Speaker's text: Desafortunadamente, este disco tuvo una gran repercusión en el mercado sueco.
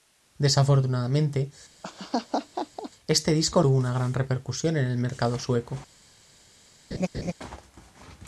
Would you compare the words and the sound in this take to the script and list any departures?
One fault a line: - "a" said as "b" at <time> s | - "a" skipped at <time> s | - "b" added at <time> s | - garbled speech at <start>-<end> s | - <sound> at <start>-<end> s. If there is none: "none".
- laugh at 1.8-2.9 s
- laugh at 6.9-7.3 s